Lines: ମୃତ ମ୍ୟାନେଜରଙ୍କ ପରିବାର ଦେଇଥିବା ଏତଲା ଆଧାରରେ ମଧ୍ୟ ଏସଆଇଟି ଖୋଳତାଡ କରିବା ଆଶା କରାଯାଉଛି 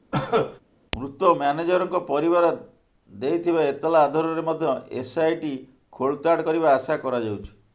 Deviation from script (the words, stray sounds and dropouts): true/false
true